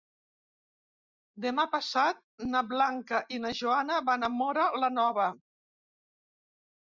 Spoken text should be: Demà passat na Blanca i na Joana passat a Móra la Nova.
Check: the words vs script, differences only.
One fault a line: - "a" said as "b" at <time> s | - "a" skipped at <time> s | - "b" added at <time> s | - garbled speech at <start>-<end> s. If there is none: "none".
- "passat" said as "van" at 4.1 s